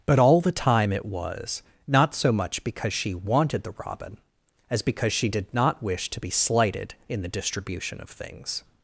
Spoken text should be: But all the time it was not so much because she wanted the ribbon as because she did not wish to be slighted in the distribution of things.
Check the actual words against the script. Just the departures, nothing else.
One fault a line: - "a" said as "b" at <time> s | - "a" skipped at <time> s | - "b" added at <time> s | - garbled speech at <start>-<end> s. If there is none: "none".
- "ribbon" said as "robin" at 3.9 s